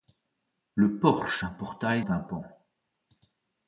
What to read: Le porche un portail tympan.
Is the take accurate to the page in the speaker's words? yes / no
yes